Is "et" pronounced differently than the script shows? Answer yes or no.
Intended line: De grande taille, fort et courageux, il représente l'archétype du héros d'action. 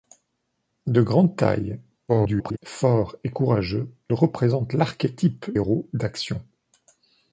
no